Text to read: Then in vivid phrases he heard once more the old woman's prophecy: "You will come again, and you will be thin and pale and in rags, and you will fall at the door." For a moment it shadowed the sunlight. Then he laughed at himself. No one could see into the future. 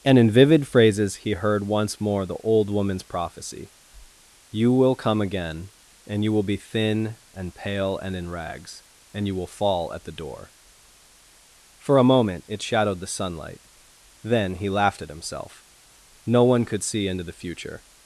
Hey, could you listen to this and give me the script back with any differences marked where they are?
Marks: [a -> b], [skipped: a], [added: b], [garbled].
[Then -> And] in vivid phrases he heard once more the old woman's prophecy: "You will come again, and you will be thin and pale and in rags, and you will fall at the door." For a moment it shadowed the sunlight. Then he laughed at himself. No one could see into the future.